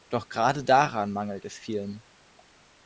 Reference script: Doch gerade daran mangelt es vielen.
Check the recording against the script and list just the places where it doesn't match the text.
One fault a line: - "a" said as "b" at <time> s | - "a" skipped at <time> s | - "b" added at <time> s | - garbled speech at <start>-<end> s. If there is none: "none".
none